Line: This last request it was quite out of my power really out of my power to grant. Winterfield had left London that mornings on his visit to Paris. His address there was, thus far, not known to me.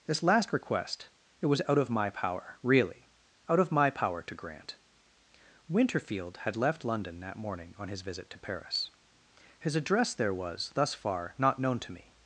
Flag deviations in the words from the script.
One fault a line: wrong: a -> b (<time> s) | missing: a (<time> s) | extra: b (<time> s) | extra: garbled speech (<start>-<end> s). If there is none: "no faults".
missing: quite (1.6 s)
wrong: mornings -> morning (7.4 s)